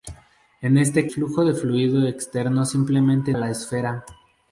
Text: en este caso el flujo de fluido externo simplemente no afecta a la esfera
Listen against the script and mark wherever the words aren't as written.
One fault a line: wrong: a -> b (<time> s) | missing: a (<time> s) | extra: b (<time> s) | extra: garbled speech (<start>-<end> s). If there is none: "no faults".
missing: caso el (1.1 s)
missing: no afecta (3.3 s)